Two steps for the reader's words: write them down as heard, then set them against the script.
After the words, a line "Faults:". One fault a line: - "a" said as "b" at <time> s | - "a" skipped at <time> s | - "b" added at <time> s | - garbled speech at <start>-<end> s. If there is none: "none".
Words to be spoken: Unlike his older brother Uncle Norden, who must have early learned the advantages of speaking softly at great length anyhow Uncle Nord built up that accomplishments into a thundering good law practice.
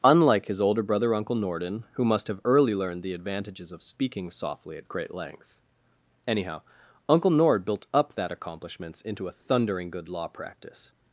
Unlike his older brother Uncle Norden, who must have early learned the advantages of speaking softly at great length anyhow Uncle Nord built up that accomplishments into a thundering good law practice.
Faults:
none